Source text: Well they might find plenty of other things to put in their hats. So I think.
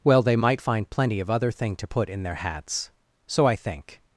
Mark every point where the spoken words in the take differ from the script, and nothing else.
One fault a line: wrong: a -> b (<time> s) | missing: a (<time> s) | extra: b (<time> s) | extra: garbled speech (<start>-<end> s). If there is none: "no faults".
wrong: things -> thing (1.5 s)